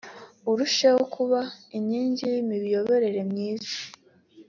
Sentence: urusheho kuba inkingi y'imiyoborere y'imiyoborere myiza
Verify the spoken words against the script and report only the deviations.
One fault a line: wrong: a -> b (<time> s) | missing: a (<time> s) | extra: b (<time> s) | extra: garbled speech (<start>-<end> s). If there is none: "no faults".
missing: y'imiyoborere (3.2 s)